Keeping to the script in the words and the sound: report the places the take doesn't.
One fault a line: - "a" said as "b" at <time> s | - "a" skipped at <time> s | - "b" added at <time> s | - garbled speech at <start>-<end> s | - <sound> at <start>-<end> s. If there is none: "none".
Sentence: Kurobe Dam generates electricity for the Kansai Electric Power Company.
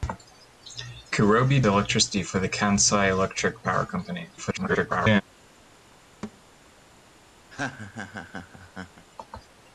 - "Dam generates" skipped at 1.6 s
- garbled speech at 4.4-5.2 s
- thud at 6.2-6.4 s
- laugh at 7.5-9.1 s